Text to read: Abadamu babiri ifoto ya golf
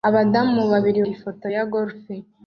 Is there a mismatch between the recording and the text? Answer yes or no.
no